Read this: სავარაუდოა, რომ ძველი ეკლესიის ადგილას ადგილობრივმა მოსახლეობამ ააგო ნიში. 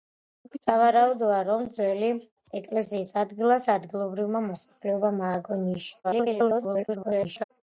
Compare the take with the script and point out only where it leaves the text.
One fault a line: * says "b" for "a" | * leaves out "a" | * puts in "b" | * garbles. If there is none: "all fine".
* garbles